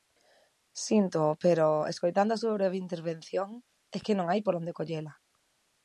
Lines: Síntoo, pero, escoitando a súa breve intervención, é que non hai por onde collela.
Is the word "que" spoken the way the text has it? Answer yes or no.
yes